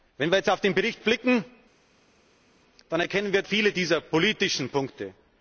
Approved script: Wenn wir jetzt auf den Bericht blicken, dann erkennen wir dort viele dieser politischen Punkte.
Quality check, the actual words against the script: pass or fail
fail